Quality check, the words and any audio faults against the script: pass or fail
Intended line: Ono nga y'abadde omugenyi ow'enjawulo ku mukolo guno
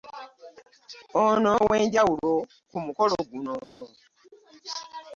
fail